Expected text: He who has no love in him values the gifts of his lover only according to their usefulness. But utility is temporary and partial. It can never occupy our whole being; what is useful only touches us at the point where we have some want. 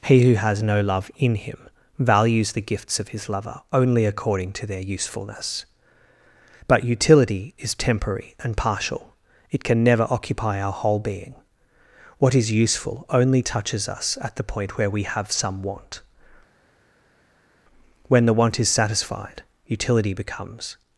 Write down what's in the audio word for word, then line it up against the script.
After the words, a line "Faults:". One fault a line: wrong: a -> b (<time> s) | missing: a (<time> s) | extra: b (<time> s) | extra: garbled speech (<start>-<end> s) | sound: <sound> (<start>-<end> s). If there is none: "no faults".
He who has no love in him values the gifts of his lover only according to their usefulness. But utility is temporary and partial. It can never occupy our whole being; what is useful only touches us at the point where we have some want. When the want is satisfied, utility becomes
Faults:
extra: When the want is satisfied utility becomes (18.1 s)